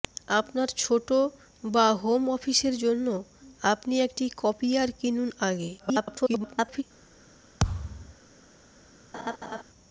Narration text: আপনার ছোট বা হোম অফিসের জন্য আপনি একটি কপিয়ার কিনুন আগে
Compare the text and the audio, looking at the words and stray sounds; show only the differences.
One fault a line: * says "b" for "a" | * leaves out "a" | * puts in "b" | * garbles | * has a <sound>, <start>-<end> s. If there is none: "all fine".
* garbles
* has a thud, 7.6-8.2 s
* has a laugh, 9.1-9.6 s